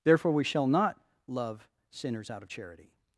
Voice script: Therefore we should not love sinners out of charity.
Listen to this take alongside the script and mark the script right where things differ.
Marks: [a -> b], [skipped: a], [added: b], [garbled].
Therefore we [should -> shall] not love sinners out of charity.